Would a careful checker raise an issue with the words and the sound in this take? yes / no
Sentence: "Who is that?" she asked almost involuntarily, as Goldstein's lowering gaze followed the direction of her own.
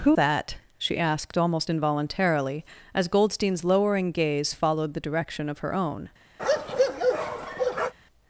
yes